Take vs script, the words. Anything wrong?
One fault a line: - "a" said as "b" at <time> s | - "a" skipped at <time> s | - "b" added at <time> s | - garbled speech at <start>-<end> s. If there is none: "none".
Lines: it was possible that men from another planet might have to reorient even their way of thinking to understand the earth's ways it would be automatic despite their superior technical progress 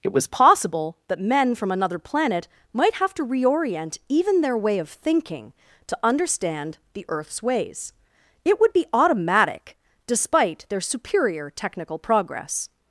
none